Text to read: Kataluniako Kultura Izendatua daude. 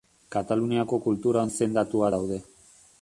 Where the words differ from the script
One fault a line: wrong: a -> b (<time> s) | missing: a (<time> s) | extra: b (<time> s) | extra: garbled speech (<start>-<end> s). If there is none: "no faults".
no faults